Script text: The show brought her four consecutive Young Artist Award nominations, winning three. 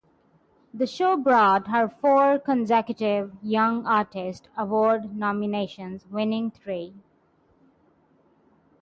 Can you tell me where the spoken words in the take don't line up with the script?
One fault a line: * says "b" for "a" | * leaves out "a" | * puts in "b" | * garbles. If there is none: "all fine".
all fine